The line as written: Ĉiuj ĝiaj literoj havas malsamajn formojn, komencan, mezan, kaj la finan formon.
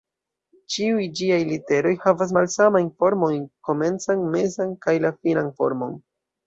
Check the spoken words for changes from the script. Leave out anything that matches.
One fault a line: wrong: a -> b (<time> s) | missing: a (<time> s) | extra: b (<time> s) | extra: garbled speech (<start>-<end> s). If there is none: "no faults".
no faults